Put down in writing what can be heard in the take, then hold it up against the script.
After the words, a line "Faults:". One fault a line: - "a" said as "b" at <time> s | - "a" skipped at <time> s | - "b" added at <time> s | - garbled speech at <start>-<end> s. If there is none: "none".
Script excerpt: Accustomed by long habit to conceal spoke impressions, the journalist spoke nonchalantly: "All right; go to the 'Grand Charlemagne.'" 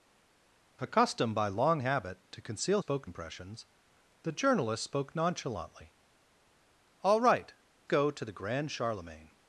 Accustomed by long habit to conceal spoke impressions, the journalist spoke nonchalantly: "All right; go to the 'Grand Charlemagne.'"
Faults:
none